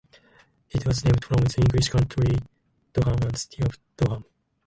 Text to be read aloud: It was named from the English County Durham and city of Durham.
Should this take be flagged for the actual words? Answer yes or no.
no